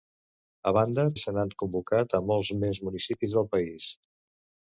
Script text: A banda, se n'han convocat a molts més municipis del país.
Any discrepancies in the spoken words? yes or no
no